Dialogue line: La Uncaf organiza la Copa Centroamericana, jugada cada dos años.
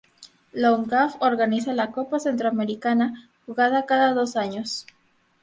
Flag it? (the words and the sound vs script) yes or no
no